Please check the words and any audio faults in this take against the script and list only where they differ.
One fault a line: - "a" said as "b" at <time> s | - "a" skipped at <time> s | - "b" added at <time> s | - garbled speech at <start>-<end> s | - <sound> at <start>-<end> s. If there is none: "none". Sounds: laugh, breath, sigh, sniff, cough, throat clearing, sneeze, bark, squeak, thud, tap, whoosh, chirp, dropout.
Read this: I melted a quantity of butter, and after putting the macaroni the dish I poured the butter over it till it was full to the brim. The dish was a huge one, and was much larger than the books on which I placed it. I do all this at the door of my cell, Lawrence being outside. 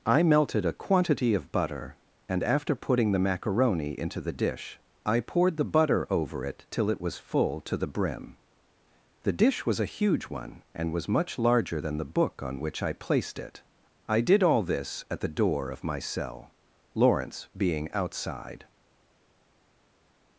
- "into" added at 4.0 s
- "books" said as "book" at 12.1 s
- "do" said as "did" at 14.2 s